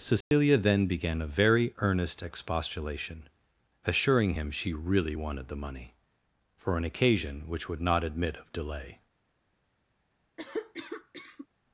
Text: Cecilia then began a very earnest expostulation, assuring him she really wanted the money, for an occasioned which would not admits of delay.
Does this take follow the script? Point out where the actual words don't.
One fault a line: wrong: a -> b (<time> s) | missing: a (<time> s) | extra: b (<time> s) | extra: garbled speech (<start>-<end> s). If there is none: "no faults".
wrong: occasioned -> occasion (6.8 s)
wrong: admits -> admit (8.0 s)